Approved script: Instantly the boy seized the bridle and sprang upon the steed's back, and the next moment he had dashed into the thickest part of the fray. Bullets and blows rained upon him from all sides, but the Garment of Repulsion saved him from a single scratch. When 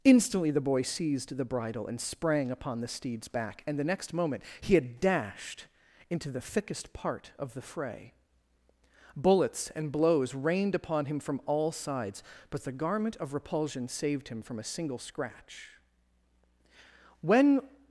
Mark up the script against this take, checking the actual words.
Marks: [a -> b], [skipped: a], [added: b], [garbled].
Instantly the boy seized the bridle and sprang upon the steed's back, and the next moment he had dashed into the thickest part of the fray. Bullets and blows rained upon him from all sides, but the Garment of Repulsion saved him from a single scratch. When